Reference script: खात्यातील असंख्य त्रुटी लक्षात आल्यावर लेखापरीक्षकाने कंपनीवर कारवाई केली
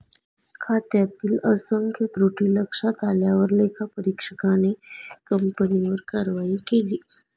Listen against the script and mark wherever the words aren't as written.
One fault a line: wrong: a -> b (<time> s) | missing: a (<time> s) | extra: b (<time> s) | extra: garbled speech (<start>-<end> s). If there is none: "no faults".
no faults